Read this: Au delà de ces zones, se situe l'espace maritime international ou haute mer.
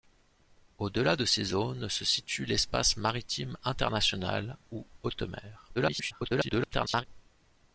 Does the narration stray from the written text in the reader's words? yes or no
yes